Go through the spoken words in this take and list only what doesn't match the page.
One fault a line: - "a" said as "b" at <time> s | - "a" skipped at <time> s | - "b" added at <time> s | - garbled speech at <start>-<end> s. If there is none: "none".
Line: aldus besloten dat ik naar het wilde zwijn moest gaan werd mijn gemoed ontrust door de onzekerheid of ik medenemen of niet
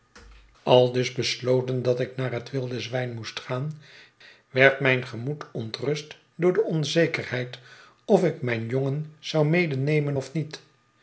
- "mijn jongen zou" added at 8.4 s